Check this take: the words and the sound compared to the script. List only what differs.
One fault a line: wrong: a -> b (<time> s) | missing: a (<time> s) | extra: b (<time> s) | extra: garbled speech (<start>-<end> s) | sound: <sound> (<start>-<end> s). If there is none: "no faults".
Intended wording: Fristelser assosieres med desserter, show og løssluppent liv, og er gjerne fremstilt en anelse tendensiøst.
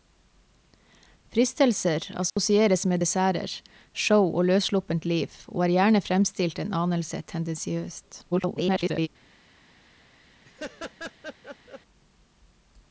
sound: dropout (2.3-2.4 s)
extra: garbled speech (8.3-9.1 s)
sound: laugh (10.4-11.8 s)